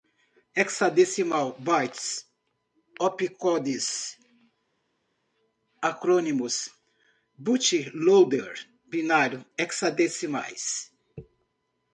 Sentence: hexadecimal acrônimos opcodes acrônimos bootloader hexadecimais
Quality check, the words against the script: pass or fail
fail